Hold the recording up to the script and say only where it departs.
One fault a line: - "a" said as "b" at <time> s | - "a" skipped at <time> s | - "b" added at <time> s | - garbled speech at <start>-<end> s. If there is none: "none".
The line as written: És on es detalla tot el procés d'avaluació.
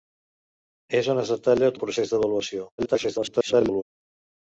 - "tot" skipped at 1.7 s
- garbled speech at 2.8-3.8 s